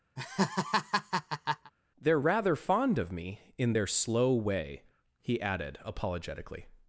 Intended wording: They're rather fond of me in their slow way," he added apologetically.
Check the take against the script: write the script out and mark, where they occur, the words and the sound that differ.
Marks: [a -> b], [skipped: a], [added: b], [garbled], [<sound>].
[laugh] They're rather fond of me in their slow way," he added apologetically.